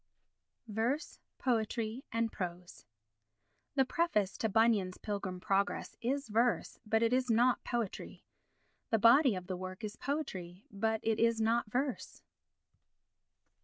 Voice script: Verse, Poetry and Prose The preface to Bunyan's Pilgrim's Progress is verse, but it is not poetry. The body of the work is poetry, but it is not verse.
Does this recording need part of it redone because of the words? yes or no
no